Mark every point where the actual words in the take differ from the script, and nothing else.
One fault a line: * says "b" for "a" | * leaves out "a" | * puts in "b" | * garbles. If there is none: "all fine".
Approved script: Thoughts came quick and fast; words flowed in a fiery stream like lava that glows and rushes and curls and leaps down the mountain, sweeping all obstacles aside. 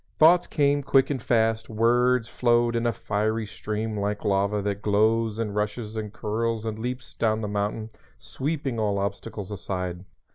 all fine